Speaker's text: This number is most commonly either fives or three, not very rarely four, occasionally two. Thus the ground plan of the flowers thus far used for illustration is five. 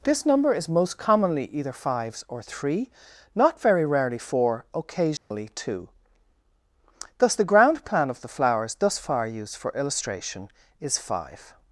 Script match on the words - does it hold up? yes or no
yes